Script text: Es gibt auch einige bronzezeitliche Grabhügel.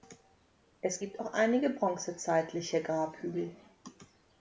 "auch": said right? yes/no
yes